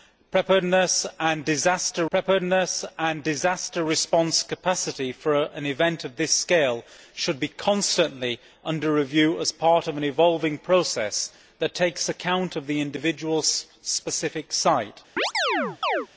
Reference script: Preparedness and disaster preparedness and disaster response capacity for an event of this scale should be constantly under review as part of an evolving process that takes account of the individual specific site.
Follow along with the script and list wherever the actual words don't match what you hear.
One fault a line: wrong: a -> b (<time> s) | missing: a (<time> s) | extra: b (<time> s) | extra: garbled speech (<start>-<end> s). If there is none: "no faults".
no faults